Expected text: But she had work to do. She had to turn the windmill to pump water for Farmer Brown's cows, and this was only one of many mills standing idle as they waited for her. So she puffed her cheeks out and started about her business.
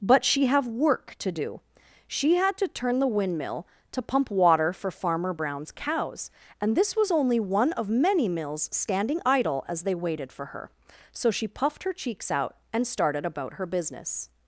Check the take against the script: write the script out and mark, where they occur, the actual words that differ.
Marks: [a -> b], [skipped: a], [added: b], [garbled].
But she [had -> have] work to do. She had to turn the windmill to pump water for Farmer Brown's cows, and this was only one of many mills standing idle as they waited for her. So she puffed her cheeks out and started about her business.